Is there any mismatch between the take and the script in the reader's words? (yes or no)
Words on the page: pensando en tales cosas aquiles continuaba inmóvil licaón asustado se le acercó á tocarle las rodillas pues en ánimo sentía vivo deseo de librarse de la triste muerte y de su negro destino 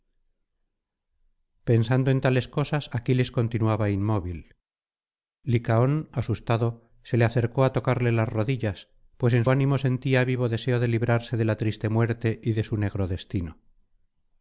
no